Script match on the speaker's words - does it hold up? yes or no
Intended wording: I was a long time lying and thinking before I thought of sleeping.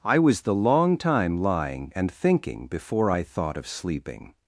no